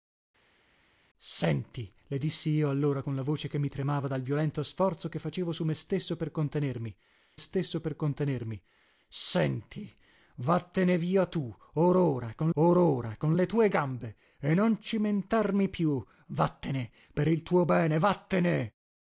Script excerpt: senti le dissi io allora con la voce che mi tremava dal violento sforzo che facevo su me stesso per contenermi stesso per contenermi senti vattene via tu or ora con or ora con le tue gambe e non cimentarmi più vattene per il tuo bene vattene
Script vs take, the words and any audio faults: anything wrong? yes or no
no